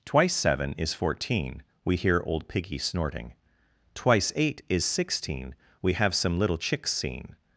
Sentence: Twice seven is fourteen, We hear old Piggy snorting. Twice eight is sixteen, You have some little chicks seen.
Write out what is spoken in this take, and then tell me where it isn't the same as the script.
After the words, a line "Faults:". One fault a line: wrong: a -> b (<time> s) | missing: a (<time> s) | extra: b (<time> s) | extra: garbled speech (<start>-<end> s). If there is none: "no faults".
Twice seven is fourteen, We hear old Piggy snorting. Twice eight is sixteen, We have some little chicks seen.
Faults:
wrong: You -> We (5.8 s)